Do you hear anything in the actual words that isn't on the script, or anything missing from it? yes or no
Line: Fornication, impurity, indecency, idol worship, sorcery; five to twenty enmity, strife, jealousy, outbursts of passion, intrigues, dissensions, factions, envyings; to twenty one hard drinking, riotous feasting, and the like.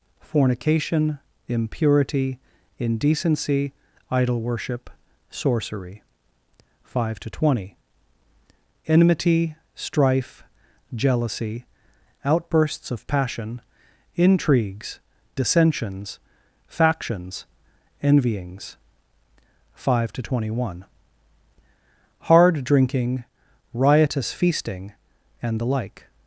yes